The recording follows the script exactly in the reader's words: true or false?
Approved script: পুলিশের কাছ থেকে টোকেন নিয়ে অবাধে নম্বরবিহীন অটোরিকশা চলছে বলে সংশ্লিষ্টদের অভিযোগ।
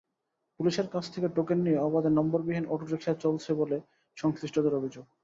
true